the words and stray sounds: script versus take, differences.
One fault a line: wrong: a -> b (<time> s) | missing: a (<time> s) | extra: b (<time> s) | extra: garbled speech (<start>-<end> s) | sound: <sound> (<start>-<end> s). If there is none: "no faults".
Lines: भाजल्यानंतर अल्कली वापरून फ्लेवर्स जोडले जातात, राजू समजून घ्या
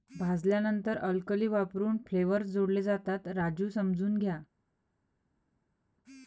no faults